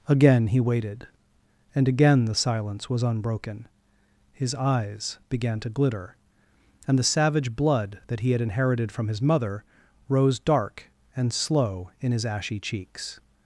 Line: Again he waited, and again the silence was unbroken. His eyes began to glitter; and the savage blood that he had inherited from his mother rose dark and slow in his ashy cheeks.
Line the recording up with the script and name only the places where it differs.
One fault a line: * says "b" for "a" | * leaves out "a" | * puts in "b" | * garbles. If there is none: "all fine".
all fine